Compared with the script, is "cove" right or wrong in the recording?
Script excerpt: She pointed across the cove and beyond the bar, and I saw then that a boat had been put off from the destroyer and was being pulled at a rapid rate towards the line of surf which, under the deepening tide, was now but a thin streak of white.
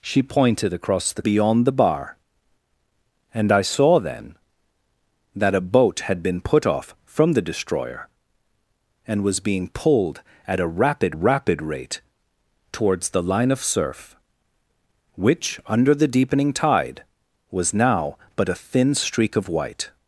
wrong